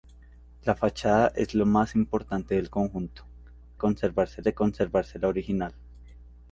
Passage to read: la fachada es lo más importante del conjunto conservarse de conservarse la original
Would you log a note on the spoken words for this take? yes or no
no